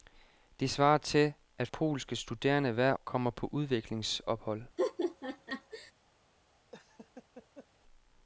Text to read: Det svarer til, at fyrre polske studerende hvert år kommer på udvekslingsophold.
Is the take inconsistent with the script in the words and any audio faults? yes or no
yes